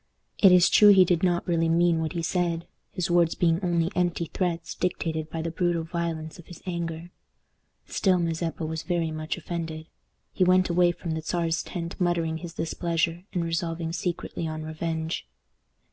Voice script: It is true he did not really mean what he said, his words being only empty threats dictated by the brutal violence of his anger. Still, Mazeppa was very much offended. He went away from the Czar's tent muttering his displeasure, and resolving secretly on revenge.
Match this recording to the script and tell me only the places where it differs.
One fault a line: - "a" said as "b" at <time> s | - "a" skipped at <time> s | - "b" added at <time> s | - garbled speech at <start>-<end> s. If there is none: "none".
none